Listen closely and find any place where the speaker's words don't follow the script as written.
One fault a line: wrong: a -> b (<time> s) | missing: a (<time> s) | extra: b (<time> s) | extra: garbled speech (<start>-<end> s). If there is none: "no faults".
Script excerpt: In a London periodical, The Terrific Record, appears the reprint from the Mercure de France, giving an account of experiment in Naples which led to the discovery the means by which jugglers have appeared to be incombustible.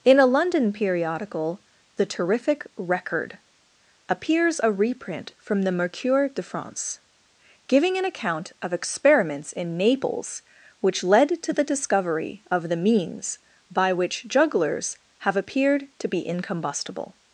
wrong: the -> a (4.6 s)
wrong: experiment -> experiments (8.7 s)
extra: of (12.5 s)